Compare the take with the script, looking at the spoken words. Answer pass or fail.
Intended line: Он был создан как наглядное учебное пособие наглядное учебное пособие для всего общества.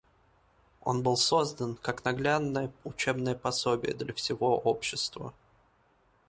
fail